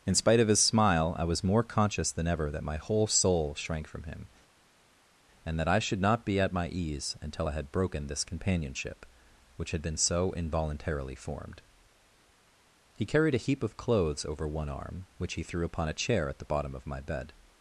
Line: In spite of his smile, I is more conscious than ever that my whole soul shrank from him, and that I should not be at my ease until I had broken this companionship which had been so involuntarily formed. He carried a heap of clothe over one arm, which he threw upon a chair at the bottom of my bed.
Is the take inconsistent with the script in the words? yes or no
yes